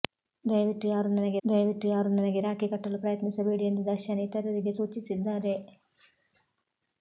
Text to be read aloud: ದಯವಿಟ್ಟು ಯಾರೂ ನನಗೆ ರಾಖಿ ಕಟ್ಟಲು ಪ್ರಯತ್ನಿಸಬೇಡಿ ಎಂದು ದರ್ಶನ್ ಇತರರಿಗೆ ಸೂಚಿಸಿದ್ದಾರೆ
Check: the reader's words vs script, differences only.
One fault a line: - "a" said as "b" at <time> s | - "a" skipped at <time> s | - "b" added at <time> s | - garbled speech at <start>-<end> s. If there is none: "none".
- "ದಯವಿಟ್ಟು ಯಾರೂ ನನಗೆ" added at 1.4 s